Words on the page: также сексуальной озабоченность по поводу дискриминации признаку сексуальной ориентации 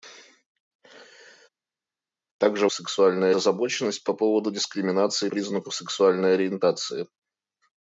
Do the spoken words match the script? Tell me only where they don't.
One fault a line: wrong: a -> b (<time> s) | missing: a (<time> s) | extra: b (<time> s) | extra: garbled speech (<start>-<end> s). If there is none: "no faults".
no faults